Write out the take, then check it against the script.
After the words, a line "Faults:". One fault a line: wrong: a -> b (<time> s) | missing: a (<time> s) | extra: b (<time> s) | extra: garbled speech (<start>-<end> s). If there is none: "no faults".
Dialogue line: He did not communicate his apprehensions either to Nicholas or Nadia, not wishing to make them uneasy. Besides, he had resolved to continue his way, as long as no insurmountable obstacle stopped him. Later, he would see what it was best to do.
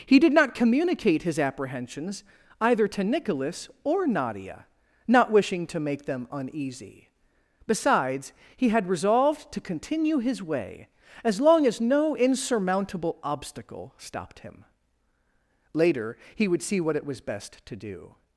He did not communicate his apprehensions either to Nicholas or Nadia, not wishing to make them uneasy. Besides, he had resolved to continue his way, as long as no insurmountable obstacle stopped him. Later, he would see what it was best to do.
Faults:
no faults